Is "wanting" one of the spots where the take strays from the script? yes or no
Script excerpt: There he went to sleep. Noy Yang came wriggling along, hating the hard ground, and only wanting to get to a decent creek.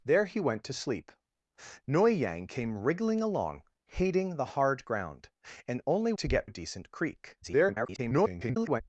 yes